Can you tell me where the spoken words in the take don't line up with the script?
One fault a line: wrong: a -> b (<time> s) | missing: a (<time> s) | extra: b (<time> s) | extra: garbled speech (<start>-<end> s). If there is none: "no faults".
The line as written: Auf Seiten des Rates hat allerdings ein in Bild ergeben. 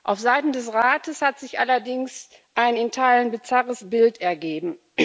extra: sich (1.4 s)
extra: Teilen bizarres (2.9 s)